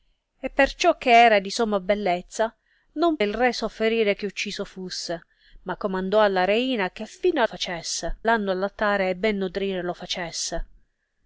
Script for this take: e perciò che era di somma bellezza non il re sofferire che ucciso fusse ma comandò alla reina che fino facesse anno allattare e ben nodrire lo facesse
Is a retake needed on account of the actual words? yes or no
no